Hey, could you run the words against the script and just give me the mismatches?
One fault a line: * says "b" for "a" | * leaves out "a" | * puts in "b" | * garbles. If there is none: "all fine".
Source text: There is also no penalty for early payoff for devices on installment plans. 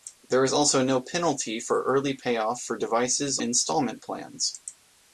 * leaves out "on"